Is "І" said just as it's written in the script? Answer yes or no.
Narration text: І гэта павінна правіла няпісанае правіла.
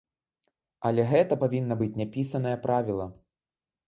no